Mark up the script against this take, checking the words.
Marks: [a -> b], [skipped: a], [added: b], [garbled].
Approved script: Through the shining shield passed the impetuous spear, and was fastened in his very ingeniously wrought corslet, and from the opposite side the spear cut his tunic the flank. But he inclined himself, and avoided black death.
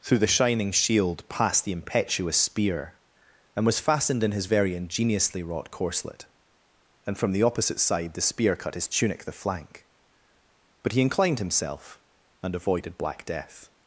Through the shining shield passed the impetuous spear, and was fastened in his very ingeniously wrought corslet, and from the opposite side the spear cut his tunic the flank. But he inclined himself, and avoided black death.